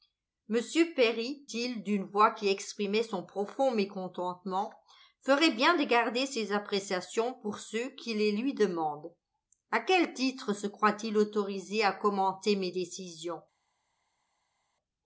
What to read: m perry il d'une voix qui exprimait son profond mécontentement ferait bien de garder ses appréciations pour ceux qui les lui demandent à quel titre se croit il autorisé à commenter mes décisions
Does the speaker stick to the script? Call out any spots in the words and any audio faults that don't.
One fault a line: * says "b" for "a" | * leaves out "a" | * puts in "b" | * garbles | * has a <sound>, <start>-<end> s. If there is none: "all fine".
all fine